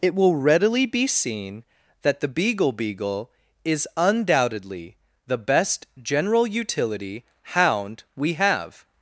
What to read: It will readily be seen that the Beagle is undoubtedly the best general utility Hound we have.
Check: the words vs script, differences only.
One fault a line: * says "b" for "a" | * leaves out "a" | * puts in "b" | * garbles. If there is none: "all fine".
* puts in "Beagle"